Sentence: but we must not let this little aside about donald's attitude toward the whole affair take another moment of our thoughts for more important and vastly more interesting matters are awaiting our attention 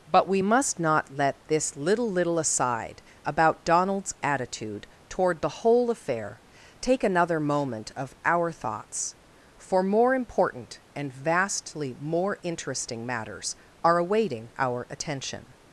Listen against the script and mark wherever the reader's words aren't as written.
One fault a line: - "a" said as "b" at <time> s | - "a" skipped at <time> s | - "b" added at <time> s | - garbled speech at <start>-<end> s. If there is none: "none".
- "little" added at 2.1 s